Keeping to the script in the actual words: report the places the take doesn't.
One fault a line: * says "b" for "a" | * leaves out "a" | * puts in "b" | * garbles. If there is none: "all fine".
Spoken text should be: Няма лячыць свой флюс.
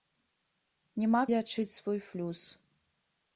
all fine